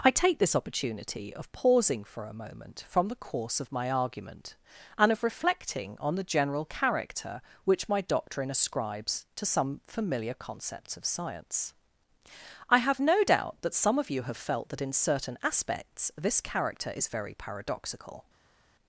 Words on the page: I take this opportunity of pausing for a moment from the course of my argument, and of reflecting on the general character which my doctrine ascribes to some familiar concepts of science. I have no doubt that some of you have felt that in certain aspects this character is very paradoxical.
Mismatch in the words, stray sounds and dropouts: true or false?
false